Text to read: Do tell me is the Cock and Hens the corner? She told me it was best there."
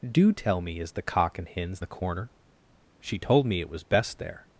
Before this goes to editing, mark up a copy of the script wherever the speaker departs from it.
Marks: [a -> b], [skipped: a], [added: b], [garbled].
Do tell me is the Cock and Hens the corner? She told me it was best there."